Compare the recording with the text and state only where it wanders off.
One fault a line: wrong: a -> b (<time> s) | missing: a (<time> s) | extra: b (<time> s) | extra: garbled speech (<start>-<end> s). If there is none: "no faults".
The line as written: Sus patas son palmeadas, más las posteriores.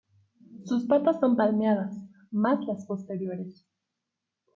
no faults